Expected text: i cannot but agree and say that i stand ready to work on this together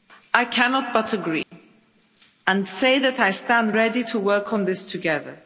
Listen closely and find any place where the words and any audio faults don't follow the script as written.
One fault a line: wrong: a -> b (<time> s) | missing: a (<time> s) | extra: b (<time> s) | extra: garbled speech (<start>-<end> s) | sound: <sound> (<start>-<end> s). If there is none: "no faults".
sound: dropout (1.4-1.5 s)